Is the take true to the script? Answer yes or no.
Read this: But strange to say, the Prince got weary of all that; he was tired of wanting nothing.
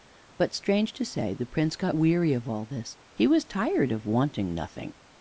no